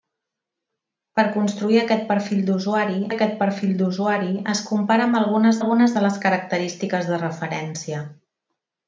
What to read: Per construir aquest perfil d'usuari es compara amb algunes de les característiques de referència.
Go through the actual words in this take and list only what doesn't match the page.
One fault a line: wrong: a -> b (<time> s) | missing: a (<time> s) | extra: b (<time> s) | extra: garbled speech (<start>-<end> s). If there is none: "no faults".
extra: aquest perfil d'usuari (3.1 s)
extra: algunes (5.6 s)